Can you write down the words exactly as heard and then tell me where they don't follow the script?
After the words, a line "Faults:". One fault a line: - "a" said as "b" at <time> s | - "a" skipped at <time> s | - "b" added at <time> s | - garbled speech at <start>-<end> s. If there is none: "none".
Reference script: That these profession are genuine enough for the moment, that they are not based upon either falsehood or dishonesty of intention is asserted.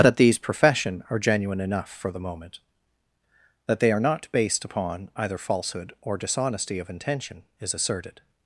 That these profession are genuine enough for the moment, that they are not based upon either falsehood or dishonesty of intention is asserted.
Faults:
none